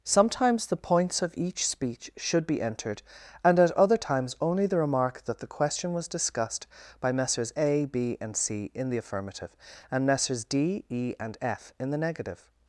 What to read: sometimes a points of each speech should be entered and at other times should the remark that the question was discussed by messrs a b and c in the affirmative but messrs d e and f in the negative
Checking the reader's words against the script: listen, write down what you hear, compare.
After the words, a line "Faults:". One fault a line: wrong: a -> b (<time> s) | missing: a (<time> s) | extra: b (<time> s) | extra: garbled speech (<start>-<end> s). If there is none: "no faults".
sometimes the points of each speech should be entered and at other times only the remark that the question was discussed by messrs a b and c in the affirmative and messrs d e and f in the negative
Faults:
wrong: a -> the (0.7 s)
wrong: should -> only (4.4 s)
wrong: but -> and (9.9 s)